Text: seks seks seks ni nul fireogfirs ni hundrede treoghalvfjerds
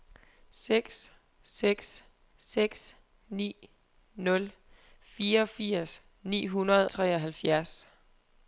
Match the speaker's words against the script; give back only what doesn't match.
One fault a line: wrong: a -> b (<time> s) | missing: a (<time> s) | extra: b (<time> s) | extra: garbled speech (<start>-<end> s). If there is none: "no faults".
no faults